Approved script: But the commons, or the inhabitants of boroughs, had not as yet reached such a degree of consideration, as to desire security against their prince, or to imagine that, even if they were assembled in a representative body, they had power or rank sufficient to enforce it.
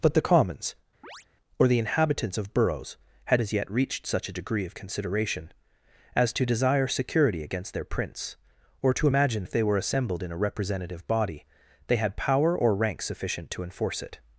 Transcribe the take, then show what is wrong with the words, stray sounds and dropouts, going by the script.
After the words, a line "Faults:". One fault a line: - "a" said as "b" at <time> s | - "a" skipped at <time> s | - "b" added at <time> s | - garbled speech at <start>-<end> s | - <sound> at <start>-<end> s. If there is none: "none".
But the commons, or the inhabitants of boroughs, had as yet reached such a degree of consideration, as to desire security against their prince, or to imagine if they were assembled in a representative body, they had power or rank sufficient to enforce it.
Faults:
- chirp at 1.0-1.3 s
- "not" skipped at 3.4 s
- "that even" skipped at 9.5 s